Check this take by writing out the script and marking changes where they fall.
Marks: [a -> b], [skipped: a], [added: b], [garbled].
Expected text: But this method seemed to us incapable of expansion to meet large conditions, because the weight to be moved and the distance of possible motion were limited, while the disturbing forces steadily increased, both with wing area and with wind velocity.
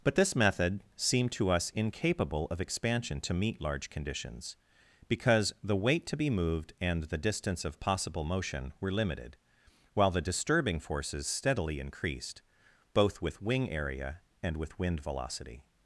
But this method seemed to us incapable of expansion to meet large conditions, because the weight to be moved and the distance of possible motion were limited, while the disturbing forces steadily increased, both with wing area and with wind velocity.